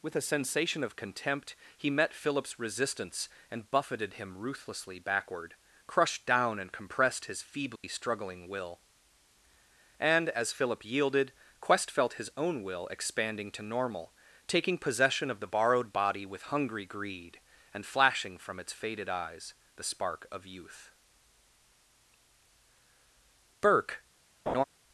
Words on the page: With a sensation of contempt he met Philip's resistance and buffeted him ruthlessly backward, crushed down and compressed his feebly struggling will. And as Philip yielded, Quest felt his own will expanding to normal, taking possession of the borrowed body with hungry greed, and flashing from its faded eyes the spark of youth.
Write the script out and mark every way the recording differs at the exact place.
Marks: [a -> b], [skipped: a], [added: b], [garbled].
With a sensation of contempt he met Philip's resistance and buffeted him ruthlessly backward, crushed down and compressed his feebly struggling will. And as Philip yielded, Quest felt his own will expanding to normal, taking possession of the borrowed body with hungry greed, and flashing from its faded eyes the spark of youth. [added: Burke]